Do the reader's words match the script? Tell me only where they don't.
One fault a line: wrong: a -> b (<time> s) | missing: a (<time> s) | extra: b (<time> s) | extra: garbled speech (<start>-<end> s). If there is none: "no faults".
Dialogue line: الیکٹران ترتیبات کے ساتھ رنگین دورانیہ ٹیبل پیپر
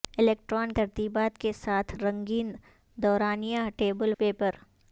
no faults